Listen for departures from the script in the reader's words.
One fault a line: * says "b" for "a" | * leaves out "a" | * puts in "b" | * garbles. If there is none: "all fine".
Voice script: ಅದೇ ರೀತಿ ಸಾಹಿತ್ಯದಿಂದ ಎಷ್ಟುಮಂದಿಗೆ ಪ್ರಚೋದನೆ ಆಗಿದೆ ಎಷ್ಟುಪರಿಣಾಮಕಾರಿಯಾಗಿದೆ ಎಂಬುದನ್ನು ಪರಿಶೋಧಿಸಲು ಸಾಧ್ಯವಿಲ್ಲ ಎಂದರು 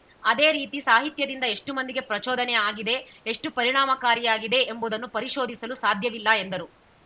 all fine